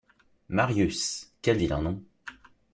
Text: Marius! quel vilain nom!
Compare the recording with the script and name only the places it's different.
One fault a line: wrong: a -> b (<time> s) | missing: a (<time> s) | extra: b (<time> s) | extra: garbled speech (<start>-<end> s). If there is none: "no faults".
no faults